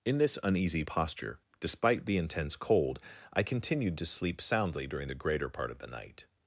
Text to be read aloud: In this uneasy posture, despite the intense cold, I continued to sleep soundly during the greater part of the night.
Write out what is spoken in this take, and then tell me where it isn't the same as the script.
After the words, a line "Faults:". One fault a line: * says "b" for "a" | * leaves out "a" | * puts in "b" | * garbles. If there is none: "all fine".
In this uneasy posture, despite the intense cold, I continued to sleep soundly during the greater part of the night.
Faults:
all fine